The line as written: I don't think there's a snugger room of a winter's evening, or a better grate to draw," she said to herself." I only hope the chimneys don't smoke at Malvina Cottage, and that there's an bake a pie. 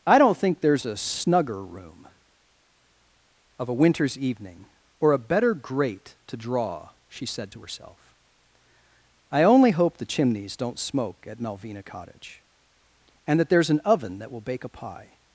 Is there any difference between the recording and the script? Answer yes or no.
yes